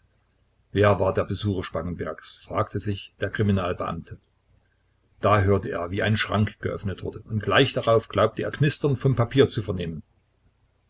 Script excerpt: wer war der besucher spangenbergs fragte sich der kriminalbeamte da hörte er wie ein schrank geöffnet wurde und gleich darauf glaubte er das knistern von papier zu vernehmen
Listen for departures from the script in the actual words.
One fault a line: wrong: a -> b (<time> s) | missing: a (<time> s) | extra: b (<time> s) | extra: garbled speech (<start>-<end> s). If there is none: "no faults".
missing: das (8.5 s)